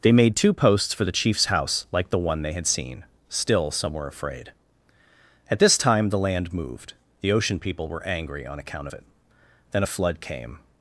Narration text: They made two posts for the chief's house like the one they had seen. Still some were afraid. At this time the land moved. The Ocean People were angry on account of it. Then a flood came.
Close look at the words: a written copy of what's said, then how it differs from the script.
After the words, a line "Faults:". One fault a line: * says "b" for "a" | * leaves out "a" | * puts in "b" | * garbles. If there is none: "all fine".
They made two posts for the chief's house like the one they had seen. Still some were afraid. At this time the land moved. The Ocean People were angry on account of it. Then a flood came.
Faults:
all fine